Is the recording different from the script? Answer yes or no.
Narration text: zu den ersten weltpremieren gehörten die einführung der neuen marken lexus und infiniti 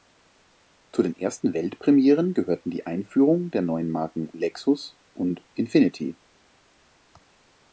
no